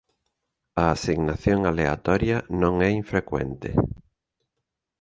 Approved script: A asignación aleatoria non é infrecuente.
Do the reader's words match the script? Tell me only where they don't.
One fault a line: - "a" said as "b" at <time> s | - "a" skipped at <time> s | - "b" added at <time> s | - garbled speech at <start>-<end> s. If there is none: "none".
none